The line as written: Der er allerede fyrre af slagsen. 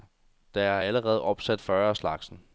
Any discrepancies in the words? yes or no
yes